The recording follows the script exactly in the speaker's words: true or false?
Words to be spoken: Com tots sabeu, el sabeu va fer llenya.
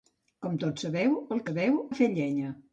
true